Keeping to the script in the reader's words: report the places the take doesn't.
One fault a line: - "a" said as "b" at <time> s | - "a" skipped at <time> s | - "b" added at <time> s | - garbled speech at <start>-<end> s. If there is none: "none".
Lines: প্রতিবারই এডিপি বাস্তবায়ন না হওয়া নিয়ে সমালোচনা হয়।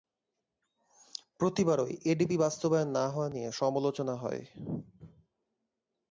none